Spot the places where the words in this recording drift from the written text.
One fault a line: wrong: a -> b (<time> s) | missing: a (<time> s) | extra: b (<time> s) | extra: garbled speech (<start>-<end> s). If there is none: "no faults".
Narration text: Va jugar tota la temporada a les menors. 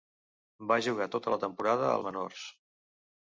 missing: les (2.0 s)